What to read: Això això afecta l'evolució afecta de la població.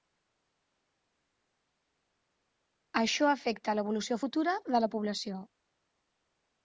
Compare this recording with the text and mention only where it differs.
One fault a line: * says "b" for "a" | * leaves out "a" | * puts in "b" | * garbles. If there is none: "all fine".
* leaves out "això"
* says "futura" for "afecta"